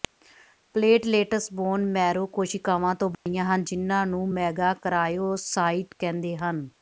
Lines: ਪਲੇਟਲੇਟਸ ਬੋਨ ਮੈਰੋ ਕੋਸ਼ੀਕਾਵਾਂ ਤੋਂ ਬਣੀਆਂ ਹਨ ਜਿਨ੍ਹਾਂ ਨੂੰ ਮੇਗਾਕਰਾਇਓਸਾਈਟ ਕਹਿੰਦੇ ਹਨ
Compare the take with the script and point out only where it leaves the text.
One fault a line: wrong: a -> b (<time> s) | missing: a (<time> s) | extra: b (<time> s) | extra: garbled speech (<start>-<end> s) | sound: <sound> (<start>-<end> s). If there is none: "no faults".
sound: dropout (3.1-3.3 s)